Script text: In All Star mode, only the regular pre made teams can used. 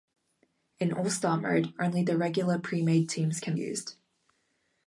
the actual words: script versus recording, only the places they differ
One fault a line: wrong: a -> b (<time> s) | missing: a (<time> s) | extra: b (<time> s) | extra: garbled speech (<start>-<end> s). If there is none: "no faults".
no faults